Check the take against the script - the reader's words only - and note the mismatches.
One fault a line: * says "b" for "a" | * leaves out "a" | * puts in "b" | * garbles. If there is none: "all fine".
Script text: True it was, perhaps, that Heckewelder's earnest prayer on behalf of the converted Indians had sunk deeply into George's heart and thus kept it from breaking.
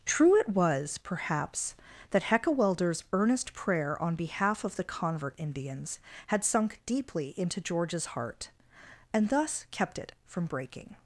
* says "convert" for "converted"